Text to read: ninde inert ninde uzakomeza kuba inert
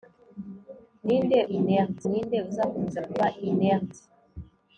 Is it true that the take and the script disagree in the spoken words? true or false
false